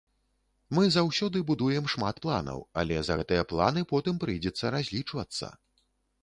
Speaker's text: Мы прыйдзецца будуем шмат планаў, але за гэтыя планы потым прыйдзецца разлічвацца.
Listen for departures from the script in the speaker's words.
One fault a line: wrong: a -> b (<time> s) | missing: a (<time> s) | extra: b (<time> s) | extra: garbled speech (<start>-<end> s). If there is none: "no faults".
wrong: прыйдзецца -> заўсёды (0.9 s)